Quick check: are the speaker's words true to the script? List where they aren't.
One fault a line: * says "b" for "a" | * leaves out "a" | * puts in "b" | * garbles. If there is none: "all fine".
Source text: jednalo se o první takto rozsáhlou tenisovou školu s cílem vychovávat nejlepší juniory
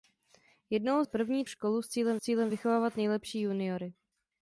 * leaves out "se"
* leaves out "takto rozsáhlou tenisovou"
* puts in "cílem"